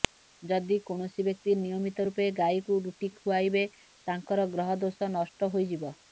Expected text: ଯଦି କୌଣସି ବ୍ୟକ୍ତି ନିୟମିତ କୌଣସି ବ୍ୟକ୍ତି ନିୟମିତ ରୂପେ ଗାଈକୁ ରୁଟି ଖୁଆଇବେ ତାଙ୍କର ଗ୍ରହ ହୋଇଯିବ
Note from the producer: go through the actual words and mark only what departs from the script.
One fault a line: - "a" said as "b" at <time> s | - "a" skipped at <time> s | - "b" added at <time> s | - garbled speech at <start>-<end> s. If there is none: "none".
- "କୌଣସି ବ୍ୟକ୍ତି ନିୟମିତ" skipped at 2.0 s
- "ଦୋଷ ନଷ୍ଟ" added at 4.8 s